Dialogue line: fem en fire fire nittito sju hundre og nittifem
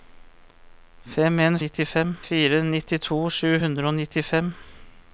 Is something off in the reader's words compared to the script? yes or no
yes